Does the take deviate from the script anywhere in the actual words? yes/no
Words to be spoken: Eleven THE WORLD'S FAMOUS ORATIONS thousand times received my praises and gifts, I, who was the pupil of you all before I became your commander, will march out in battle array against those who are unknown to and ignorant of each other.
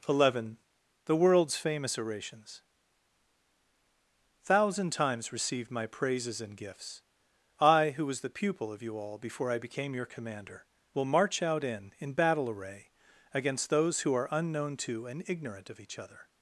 yes